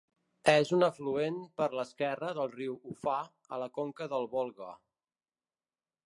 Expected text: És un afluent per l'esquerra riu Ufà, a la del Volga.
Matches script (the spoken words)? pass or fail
fail